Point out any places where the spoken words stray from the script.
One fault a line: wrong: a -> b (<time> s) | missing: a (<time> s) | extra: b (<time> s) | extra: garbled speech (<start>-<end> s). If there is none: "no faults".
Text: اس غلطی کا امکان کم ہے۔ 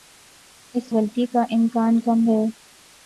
no faults